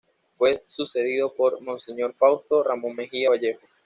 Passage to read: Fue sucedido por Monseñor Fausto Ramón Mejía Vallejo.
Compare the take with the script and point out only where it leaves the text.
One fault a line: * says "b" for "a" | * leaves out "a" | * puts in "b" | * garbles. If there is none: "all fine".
all fine